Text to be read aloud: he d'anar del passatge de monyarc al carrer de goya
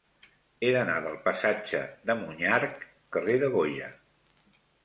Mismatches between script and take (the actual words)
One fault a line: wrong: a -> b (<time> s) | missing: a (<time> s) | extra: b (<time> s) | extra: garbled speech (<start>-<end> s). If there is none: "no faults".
missing: al (2.8 s)